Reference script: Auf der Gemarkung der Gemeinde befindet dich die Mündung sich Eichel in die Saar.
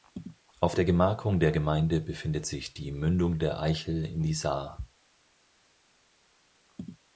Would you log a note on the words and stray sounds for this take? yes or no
yes